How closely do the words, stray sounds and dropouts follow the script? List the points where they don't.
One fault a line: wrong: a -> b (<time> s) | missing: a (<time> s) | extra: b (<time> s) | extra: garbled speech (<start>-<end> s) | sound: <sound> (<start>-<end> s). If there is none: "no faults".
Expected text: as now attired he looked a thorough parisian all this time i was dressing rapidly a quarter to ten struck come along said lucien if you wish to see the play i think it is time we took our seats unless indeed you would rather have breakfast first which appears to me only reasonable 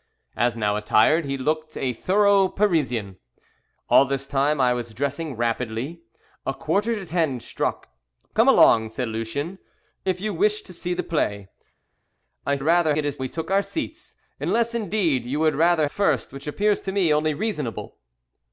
wrong: think -> rather (12.6 s)
missing: time (13.2 s)
missing: have breakfast (15.9 s)